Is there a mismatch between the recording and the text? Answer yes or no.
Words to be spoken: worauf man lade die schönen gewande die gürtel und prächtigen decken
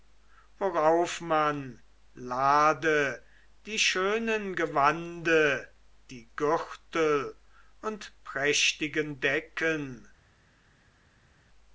no